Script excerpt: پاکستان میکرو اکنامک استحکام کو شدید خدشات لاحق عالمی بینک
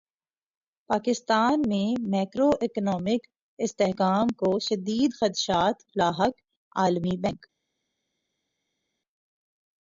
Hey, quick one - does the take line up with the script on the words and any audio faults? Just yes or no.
no